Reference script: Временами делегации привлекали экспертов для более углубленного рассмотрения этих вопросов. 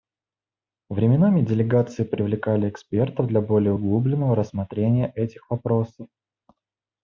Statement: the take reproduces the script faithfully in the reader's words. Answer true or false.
true